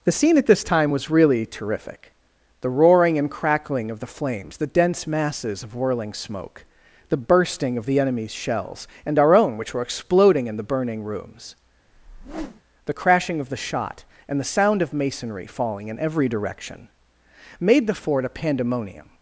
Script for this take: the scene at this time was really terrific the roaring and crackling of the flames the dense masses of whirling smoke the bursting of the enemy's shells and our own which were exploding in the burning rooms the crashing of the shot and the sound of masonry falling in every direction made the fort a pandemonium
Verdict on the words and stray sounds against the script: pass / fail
fail